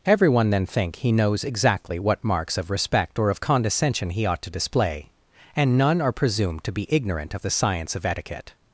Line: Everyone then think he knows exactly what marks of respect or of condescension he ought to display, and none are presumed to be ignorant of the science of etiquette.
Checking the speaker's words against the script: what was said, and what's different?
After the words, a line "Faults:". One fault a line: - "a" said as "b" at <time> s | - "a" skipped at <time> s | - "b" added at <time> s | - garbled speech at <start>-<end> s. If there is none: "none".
Everyone then think he knows exactly what marks of respect or of condescension he ought to display, and none are presumed to be ignorant of the science of etiquette.
Faults:
none